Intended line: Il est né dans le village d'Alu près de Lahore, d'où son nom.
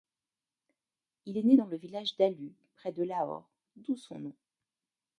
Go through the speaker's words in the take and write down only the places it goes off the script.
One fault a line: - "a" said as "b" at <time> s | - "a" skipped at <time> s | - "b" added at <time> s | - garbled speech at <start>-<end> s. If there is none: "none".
none